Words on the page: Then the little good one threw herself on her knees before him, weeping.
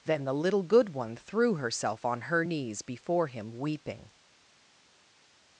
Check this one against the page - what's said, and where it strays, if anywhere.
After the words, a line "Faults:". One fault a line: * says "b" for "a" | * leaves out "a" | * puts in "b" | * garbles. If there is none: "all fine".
Then the little good one threw herself on her knees before him, weeping.
Faults:
all fine